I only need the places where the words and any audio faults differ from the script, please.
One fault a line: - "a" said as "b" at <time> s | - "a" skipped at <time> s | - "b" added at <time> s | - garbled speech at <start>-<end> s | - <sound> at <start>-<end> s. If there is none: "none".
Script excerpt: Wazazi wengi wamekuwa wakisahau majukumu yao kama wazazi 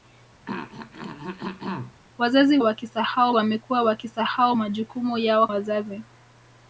- throat clearing at 0.5-2.0 s
- "wengi" said as "wakisahau" at 2.6 s
- "kama" skipped at 5.5 s